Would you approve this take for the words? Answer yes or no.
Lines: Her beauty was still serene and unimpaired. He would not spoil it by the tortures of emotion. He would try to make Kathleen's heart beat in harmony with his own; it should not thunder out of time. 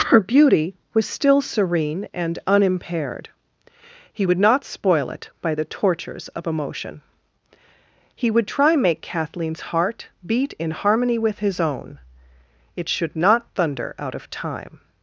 no